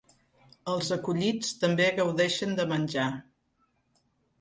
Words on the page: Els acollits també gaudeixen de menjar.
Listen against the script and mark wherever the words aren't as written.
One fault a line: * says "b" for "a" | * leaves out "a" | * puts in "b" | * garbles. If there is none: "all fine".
all fine